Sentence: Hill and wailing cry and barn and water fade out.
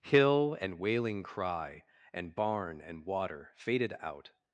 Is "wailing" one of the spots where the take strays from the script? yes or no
no